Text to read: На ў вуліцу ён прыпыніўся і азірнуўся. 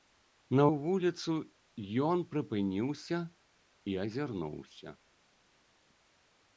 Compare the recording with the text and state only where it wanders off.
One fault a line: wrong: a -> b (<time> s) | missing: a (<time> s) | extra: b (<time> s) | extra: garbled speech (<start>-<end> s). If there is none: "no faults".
no faults